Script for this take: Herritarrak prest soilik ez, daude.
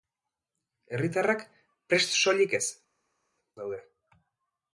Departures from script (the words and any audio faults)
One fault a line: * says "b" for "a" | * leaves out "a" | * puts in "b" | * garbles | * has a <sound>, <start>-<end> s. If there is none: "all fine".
all fine